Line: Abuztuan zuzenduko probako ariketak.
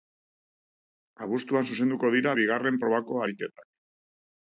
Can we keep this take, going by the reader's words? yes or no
no